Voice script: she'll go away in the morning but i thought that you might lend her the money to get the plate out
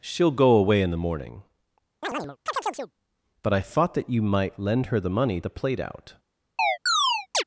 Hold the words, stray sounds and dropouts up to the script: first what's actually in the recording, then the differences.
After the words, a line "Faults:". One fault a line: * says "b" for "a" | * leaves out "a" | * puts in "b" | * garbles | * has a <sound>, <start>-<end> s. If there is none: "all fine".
she'll go away in the morning but i thought that you might lend her the money the plate out
Faults:
* has a chirp, 2.0-2.9 s
* leaves out "to get"
* has a chirp, 6.6-7.4 s